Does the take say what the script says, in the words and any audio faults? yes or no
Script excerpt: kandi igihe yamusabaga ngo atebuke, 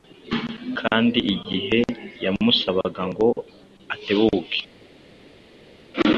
yes